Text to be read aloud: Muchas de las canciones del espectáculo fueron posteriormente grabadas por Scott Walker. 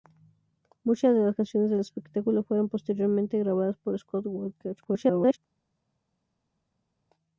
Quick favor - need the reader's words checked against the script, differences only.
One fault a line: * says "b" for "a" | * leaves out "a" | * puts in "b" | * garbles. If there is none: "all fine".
* garbles